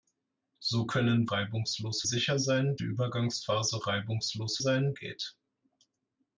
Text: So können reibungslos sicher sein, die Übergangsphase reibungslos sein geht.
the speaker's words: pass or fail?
pass